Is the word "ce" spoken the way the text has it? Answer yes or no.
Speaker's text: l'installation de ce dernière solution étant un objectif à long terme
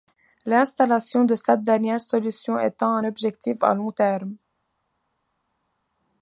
no